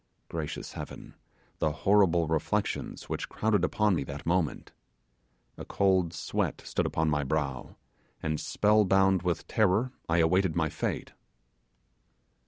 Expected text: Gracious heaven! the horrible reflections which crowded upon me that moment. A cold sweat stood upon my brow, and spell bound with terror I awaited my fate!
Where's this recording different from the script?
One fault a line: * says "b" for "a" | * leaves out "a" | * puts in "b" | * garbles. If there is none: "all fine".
all fine